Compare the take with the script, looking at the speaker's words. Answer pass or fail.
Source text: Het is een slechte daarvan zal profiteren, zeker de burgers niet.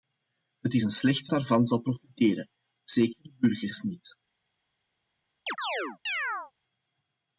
pass